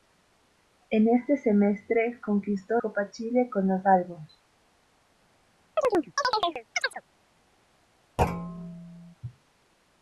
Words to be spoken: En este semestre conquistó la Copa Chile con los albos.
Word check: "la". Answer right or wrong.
wrong